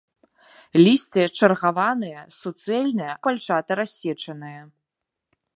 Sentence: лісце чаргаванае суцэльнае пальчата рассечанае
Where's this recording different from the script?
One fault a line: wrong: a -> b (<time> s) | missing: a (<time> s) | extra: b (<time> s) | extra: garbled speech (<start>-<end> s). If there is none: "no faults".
no faults